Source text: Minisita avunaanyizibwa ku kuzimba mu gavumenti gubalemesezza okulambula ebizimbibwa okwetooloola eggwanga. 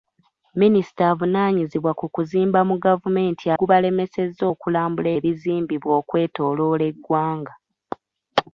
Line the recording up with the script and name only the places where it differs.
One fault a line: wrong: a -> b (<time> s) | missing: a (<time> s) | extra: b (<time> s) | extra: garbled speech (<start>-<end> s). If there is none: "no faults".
no faults